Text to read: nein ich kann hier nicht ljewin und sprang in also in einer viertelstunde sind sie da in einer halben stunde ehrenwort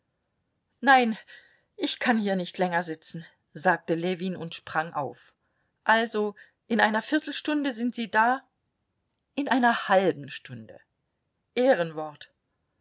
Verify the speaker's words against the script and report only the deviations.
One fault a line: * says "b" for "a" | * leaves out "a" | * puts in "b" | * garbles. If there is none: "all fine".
* puts in "länger sitzen sagte"
* says "auf" for "in"